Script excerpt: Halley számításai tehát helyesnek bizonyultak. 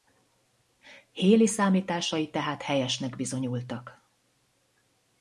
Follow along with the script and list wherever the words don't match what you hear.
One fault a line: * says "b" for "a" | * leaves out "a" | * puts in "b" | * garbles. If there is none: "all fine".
all fine